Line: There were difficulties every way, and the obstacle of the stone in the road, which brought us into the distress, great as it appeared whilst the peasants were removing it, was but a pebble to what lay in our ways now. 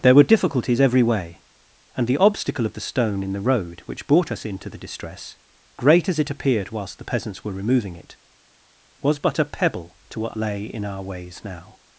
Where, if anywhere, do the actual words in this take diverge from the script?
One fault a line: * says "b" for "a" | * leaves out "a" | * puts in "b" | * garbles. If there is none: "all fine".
all fine